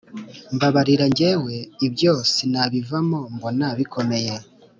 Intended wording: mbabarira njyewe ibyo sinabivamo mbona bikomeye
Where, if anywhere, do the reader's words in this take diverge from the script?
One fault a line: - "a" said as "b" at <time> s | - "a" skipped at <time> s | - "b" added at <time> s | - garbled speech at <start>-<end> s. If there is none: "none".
none